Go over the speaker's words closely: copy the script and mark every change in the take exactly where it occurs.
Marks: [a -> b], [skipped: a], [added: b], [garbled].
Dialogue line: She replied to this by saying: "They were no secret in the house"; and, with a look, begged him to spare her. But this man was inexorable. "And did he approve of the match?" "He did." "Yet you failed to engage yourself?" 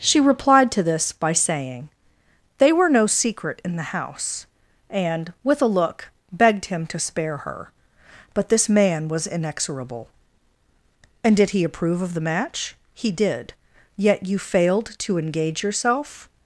She replied to this by saying: "They were no secret in the house"; and, with a look, begged him to spare her. But this man was inexorable. "And did he approve of the match?" "He did." "Yet you failed to engage yourself?"